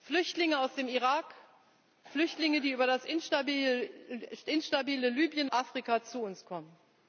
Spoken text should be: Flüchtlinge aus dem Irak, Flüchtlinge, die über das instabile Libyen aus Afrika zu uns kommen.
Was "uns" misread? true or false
false